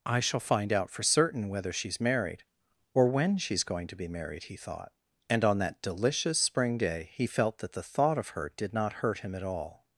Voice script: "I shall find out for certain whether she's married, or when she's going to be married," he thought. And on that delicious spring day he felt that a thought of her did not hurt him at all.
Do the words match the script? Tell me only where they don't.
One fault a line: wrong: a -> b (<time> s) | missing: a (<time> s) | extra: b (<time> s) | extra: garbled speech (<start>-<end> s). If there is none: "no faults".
wrong: a -> the (7.7 s)